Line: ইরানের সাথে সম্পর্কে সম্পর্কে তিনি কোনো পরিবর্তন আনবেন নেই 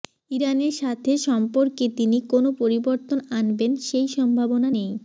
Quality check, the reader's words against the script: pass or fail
fail